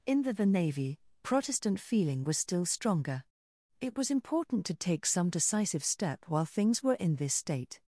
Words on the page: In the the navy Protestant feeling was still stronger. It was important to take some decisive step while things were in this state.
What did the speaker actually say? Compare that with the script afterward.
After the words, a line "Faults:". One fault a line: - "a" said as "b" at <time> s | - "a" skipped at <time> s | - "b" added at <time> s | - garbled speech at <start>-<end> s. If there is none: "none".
In the the navy Protestant feeling was still stronger. It was important to take some decisive step while things were in this state.
Faults:
none